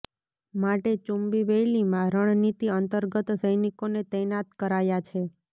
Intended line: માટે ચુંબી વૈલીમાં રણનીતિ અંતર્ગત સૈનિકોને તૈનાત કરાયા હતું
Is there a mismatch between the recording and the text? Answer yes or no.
yes